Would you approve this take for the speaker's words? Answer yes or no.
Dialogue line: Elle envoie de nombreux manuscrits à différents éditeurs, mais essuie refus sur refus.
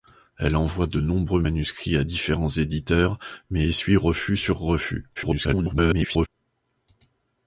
no